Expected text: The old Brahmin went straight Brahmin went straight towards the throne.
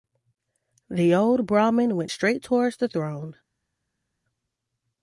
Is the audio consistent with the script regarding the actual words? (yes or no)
no